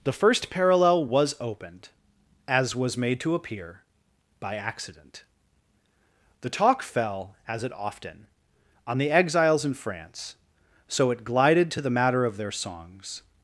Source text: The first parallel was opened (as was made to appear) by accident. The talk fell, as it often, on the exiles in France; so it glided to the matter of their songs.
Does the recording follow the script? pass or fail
pass